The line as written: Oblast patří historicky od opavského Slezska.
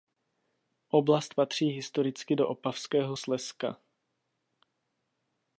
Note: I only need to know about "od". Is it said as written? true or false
false